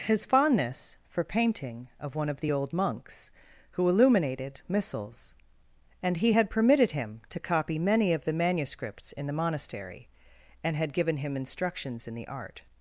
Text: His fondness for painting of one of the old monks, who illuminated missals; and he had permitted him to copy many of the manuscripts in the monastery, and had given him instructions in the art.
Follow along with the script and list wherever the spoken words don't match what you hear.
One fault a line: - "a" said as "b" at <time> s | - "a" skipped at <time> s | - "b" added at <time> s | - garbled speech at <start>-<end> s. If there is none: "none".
none